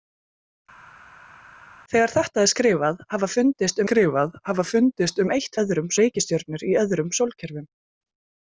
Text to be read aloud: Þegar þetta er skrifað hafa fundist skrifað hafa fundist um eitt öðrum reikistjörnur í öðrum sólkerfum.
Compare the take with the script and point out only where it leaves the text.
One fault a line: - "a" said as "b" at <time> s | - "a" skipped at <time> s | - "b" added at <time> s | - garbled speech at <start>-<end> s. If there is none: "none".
none